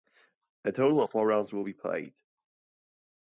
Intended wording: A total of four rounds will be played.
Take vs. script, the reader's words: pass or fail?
pass